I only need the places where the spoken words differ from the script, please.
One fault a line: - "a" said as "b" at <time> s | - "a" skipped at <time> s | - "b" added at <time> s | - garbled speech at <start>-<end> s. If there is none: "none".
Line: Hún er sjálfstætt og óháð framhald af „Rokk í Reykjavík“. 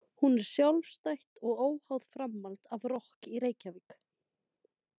none